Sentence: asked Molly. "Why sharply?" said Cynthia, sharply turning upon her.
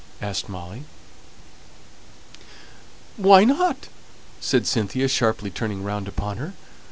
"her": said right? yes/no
yes